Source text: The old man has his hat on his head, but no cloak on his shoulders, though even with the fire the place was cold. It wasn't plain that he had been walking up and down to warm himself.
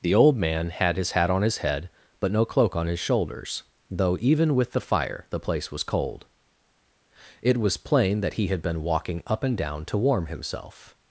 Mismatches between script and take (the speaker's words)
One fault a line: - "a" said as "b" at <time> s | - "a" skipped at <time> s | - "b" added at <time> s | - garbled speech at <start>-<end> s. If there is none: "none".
- "has" said as "had" at 0.7 s
- "wasn't" said as "was" at 7.6 s